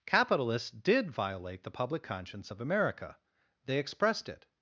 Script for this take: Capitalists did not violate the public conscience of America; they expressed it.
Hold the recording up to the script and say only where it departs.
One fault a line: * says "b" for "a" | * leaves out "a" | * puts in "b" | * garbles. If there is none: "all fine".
* leaves out "not"